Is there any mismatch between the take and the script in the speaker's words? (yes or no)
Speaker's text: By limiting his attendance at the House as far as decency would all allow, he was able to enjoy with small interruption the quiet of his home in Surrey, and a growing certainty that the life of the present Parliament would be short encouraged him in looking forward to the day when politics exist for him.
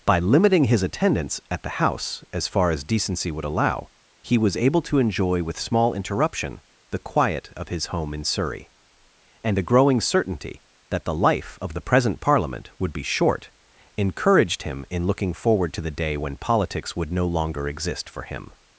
yes